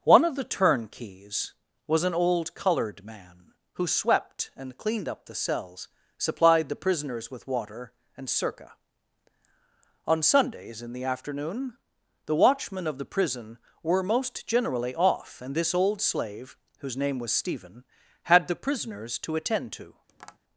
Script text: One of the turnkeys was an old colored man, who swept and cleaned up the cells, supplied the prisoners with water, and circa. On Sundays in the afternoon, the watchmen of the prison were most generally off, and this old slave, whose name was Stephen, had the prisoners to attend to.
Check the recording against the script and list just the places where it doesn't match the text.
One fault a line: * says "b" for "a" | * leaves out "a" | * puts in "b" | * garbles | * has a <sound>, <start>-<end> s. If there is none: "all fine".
* has a tap, 20.1-20.4 s